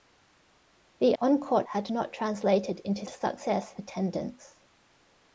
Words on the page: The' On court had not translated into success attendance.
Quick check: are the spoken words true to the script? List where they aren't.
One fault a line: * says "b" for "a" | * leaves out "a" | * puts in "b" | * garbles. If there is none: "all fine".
all fine